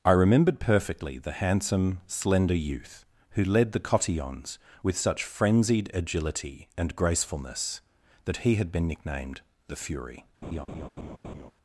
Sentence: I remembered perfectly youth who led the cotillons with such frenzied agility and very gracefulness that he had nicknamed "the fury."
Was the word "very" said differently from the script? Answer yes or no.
yes